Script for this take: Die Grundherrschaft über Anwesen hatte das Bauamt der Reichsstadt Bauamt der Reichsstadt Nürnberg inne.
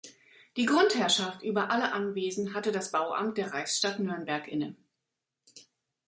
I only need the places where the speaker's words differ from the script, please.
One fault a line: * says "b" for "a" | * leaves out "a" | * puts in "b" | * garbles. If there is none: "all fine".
* puts in "alle"
* leaves out "Bauamt der Reichsstadt"